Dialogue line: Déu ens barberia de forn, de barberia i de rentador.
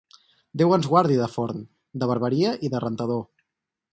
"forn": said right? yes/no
yes